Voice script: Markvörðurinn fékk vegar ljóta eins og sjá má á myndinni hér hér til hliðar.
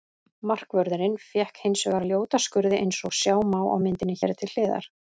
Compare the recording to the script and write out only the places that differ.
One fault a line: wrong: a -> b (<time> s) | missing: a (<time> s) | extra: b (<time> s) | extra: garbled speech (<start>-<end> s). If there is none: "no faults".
extra: hins (1.6 s)
extra: skurði (2.4 s)
missing: hér (4.3 s)